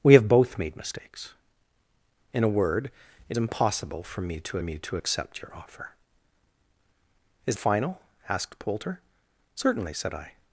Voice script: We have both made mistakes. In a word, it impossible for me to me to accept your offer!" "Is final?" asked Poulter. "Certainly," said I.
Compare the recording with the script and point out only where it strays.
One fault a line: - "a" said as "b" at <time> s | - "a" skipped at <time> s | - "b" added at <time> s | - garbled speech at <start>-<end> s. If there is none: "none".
none